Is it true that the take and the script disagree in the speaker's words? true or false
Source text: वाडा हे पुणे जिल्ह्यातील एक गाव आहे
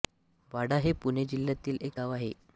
false